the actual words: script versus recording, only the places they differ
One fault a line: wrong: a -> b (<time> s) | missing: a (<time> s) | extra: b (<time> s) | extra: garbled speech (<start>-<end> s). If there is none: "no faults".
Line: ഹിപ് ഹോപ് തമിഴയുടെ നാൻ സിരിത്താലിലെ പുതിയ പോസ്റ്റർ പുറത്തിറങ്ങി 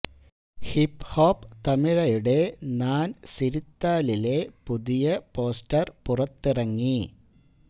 no faults